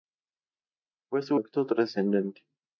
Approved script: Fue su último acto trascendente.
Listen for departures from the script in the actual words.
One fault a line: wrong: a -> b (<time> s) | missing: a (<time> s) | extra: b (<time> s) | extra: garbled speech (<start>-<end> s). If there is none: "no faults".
missing: último (1.4 s)